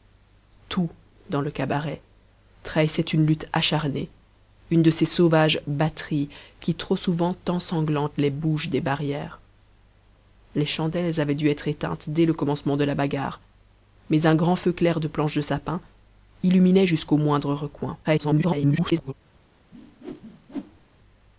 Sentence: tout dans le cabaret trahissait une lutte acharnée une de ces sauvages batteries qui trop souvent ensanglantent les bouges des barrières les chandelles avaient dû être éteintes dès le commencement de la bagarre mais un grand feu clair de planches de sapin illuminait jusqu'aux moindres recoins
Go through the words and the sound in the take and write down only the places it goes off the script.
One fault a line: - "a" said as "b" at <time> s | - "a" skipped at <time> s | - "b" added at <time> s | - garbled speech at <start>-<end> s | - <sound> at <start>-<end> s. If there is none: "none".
- garbled speech at 18.0-19.1 s
- whoosh at 19.7-20.9 s